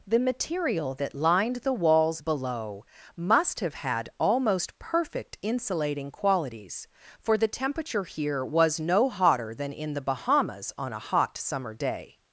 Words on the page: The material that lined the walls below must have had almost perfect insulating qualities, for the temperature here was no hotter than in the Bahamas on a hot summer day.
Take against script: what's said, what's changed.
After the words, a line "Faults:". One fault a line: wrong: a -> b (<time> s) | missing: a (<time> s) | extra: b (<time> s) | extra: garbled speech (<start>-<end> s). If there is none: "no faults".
The material that lined the walls below must have had almost perfect insulating qualities, for the temperature here was no hotter than in the Bahamas on a hot summer day.
Faults:
no faults